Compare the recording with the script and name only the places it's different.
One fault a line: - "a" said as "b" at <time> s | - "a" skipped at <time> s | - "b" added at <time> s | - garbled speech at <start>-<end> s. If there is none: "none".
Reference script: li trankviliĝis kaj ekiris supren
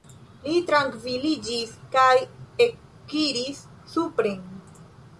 none